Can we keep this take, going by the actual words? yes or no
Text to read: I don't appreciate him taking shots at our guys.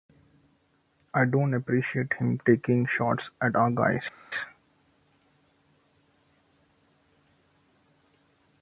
yes